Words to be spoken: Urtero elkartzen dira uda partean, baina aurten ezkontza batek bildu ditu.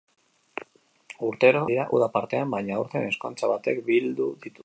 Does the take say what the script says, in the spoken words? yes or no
no